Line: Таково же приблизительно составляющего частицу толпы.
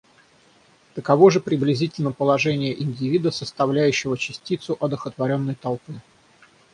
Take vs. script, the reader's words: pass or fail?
fail